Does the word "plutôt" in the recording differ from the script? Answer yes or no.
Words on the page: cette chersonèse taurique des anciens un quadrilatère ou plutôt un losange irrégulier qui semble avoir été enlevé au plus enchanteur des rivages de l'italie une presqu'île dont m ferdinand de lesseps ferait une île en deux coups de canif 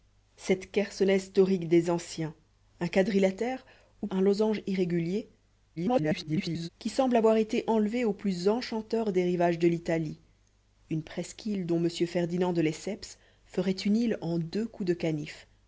yes